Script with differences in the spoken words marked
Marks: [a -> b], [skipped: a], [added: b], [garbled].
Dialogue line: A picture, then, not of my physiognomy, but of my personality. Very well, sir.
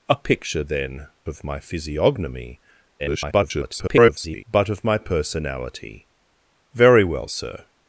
A picture, then, [skipped: not] of my physiognomy, [garbled] but of my personality. Very well, sir.